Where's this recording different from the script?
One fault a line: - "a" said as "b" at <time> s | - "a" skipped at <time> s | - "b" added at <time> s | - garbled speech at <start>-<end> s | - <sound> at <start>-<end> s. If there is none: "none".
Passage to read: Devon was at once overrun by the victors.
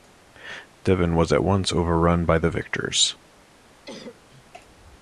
- cough at 3.9-4.5 s